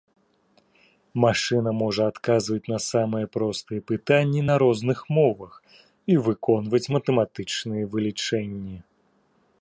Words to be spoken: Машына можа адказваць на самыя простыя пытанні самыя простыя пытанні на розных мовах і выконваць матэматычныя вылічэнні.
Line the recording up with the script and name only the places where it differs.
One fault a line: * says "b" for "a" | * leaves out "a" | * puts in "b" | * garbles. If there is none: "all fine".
* leaves out "самыя простыя пытанні"